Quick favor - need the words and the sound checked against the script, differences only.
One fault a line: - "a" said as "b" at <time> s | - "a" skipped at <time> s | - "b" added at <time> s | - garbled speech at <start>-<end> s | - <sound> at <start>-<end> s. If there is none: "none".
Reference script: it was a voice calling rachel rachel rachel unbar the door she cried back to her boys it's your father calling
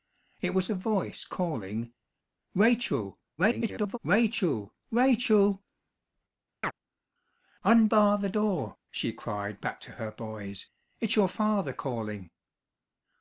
- garbled speech at 3.4-4.0 s
- chirp at 6.6-6.7 s